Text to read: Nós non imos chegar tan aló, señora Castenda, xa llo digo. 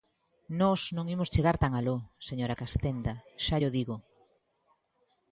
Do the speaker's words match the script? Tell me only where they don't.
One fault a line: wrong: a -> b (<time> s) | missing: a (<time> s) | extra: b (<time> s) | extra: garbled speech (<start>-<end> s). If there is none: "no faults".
no faults